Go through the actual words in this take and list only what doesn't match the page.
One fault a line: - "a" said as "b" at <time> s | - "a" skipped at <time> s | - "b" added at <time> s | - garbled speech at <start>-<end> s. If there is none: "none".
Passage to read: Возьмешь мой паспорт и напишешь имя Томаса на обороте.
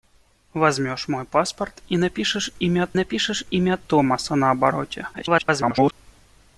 - "напишешь имя" added at 2.9 s
- garbled speech at 5.1-5.9 s